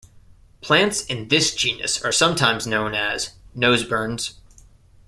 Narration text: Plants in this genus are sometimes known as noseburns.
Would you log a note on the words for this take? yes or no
no